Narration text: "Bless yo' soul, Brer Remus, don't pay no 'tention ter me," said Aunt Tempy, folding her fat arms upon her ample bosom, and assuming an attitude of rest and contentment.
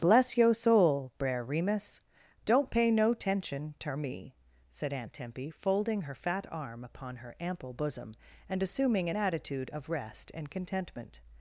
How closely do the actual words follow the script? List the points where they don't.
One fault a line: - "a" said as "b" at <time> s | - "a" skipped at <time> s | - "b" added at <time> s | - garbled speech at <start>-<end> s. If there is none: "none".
- "arms" said as "arm" at 6.5 s